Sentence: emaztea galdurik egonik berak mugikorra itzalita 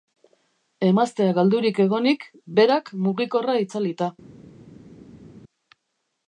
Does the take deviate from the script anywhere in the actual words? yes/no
no